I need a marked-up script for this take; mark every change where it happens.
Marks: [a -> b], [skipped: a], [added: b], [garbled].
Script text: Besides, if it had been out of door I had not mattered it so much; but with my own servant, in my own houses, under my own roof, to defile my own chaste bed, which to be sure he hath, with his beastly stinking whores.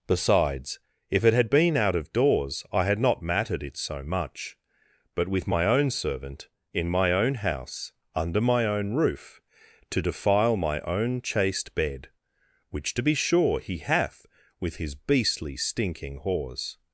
Besides, if it had been out of [door -> doors] I had not mattered it so much; but with my own servant, in my own [houses, -> house] under my own roof, to defile my own chaste bed, which to be sure he hath, with his beastly stinking whores.